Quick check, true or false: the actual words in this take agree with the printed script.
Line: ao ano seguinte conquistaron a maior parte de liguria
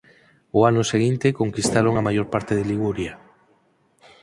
true